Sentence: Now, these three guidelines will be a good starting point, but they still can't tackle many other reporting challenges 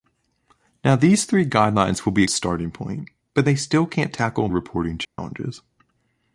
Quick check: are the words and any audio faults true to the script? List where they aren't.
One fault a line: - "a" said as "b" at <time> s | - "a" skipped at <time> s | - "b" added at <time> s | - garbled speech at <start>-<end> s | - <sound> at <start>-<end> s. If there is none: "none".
- "good" skipped at 2.3 s
- "many other" skipped at 4.5 s
- dropout at 5.0-5.2 s